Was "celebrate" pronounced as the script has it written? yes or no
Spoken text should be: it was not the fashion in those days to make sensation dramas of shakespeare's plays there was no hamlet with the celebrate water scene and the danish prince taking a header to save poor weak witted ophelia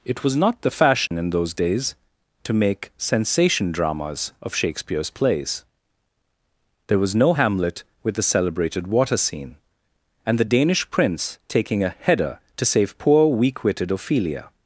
no